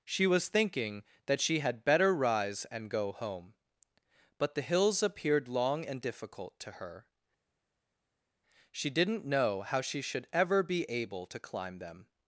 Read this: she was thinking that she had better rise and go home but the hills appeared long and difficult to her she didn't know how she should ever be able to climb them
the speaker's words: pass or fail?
pass